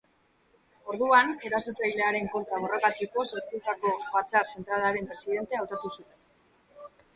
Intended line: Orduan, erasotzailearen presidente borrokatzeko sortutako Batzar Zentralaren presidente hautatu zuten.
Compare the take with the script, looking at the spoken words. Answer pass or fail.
fail